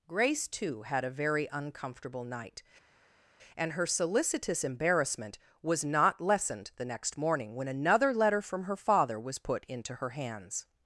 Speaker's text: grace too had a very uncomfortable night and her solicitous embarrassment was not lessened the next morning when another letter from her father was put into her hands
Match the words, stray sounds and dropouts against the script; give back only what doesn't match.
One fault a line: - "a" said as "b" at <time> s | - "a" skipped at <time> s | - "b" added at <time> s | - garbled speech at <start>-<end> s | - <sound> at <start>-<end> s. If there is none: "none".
none